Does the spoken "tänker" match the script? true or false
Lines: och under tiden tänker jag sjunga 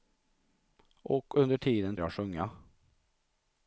false